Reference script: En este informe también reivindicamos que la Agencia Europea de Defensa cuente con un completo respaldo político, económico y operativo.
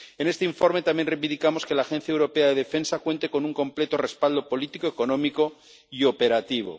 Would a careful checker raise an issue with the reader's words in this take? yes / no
no